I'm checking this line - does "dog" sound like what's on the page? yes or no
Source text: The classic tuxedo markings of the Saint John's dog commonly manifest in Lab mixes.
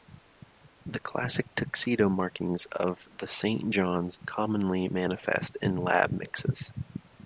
no